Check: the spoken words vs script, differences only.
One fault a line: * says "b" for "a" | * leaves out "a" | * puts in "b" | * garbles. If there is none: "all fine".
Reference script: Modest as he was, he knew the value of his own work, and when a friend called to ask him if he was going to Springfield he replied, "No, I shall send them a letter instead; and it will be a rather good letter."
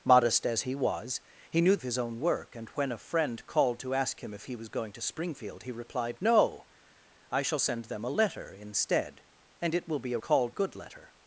* leaves out "the value"
* says "called" for "rather"